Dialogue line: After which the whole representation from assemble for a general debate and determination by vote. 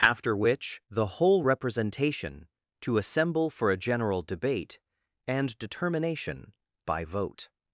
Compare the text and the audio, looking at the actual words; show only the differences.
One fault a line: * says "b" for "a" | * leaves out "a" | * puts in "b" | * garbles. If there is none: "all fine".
* says "to" for "from"